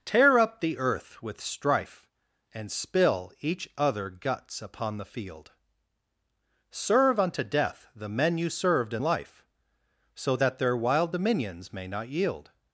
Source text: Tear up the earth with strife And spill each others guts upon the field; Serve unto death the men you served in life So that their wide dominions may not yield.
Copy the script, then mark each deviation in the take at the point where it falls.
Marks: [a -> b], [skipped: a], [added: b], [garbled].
Tear up the earth with strife And spill each [others -> other] guts upon the field; Serve unto death the men you served in life So that their [wide -> wild] dominions may not yield.